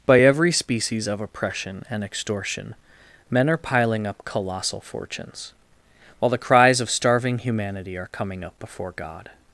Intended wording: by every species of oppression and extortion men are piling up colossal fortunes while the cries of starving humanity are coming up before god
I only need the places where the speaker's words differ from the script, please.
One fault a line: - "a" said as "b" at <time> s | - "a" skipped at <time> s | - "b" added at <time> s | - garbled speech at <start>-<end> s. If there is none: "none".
none